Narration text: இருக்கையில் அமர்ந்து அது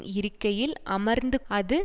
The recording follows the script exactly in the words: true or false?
true